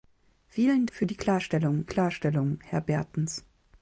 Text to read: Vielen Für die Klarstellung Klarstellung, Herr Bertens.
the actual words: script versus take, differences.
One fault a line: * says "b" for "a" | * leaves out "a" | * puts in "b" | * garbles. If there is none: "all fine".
all fine